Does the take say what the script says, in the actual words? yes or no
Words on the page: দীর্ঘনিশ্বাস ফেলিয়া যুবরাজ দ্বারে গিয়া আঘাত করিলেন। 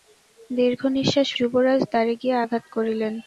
no